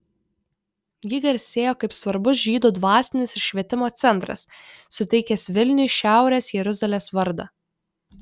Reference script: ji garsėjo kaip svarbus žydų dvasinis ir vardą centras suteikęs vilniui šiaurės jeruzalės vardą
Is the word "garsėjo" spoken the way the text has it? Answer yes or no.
yes